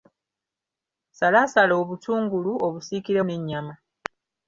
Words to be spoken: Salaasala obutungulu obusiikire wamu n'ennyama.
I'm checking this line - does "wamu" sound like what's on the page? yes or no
no